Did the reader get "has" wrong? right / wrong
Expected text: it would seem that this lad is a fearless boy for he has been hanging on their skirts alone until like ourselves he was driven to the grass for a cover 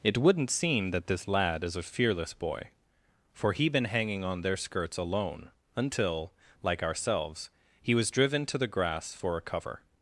wrong